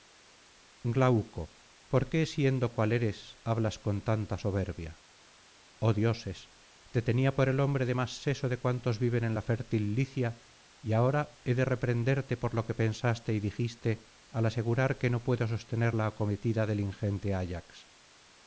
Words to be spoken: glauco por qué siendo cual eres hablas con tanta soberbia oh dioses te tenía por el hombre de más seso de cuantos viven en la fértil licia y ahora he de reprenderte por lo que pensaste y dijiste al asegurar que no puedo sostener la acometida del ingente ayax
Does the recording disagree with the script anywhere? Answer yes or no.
no